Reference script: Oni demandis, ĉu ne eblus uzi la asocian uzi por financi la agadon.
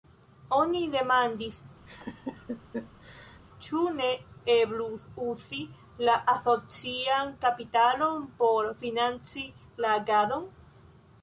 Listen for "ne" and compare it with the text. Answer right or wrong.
right